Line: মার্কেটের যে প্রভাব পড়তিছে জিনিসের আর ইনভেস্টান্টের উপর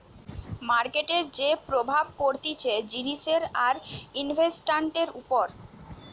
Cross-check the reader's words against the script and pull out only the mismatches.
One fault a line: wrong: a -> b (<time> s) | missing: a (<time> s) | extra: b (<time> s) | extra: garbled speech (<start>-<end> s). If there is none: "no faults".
no faults